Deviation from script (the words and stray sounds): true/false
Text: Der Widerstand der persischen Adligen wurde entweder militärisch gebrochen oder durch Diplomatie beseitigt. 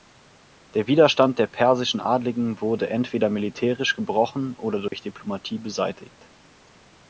true